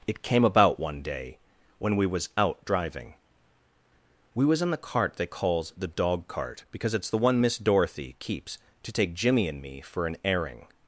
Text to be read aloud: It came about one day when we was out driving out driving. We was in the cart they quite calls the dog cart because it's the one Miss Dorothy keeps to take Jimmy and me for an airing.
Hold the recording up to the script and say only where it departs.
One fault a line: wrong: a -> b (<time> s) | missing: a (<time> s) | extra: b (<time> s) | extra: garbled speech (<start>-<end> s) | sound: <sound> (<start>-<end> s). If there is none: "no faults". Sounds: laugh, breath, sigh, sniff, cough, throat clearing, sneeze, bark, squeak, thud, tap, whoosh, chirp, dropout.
missing: out driving (3.1 s)
missing: quite (5.3 s)